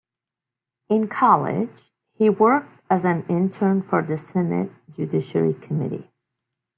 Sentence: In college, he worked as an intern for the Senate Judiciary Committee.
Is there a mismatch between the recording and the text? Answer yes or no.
no